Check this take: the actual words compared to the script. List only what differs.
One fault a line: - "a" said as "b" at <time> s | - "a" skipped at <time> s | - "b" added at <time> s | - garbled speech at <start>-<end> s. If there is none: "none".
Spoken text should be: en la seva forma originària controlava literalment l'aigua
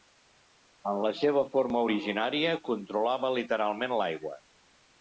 none